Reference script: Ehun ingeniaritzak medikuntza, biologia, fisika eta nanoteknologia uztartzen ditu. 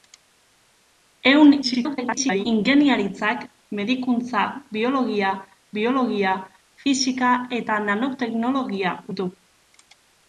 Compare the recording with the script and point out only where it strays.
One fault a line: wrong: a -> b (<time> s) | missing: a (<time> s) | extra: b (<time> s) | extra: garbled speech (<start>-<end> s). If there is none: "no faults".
extra: garbled speech (1.6-2.5 s)
extra: biologia (5.8 s)
missing: uztartzen (9.0 s)